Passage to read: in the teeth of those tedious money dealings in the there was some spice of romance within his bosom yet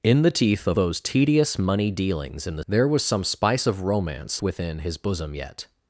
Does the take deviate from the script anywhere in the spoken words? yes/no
no